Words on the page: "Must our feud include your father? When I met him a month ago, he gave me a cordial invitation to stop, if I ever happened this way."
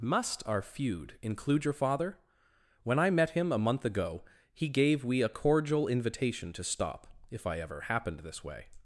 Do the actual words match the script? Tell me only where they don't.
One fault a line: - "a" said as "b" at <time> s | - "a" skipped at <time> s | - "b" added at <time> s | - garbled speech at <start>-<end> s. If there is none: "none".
- "me" said as "we" at 5.0 s